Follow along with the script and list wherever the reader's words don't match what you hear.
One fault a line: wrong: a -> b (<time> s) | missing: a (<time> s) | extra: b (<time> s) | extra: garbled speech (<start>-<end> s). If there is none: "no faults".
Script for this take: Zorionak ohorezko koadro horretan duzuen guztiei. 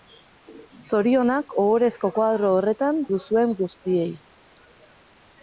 no faults